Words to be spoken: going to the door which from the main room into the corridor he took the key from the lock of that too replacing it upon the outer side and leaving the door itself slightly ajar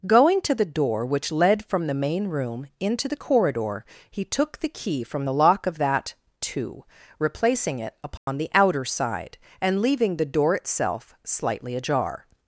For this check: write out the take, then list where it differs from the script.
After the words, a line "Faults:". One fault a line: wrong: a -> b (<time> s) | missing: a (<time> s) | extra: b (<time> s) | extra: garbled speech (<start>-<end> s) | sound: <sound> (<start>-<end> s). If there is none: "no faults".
going to the door which led from the main room into the corridor he took the key from the lock of that too replacing it upon the outer side and leaving the door itself slightly ajar
Faults:
extra: led (1.3 s)
sound: dropout (8.2-8.3 s)